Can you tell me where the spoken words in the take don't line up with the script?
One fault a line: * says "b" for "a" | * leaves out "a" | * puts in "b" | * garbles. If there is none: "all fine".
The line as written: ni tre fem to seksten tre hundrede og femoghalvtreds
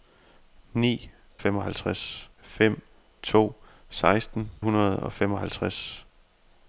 * says "femoghalvtreds" for "tre"
* leaves out "tre"